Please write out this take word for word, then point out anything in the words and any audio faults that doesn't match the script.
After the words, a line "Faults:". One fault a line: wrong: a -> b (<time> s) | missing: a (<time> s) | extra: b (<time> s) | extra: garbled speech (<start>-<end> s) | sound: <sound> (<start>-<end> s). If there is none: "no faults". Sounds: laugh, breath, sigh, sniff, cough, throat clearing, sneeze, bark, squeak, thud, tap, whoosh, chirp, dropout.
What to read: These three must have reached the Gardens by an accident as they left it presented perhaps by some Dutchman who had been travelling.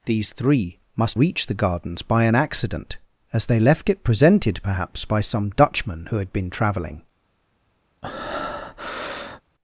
These three must reached the Gardens by an accident as they left it presented perhaps by some Dutchman who had been travelling.
Faults:
missing: have (1.2 s)
sound: breath (8.0-9.4 s)